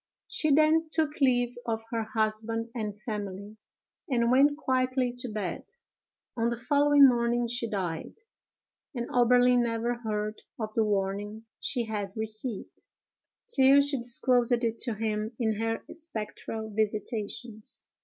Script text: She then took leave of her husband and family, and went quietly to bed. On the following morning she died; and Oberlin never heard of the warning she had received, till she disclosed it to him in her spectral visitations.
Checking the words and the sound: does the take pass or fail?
pass